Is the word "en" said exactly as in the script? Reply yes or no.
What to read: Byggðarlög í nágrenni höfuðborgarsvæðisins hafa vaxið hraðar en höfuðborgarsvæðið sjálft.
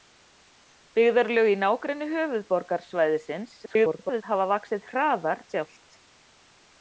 no